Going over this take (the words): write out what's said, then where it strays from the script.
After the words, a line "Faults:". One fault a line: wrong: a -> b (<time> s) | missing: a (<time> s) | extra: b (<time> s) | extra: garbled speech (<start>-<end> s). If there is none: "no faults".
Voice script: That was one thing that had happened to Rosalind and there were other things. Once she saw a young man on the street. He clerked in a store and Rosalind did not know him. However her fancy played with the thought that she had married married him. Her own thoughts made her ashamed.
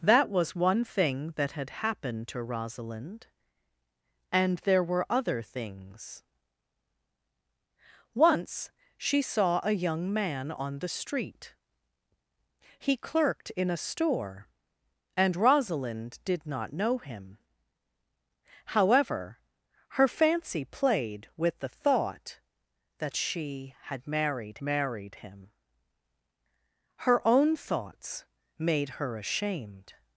That was one thing that had happened to Rosalind and there were other things. Once she saw a young man on the street. He clerked in a store and Rosalind did not know him. However her fancy played with the thought that she had married married him. Her own thoughts made her ashamed.
Faults:
no faults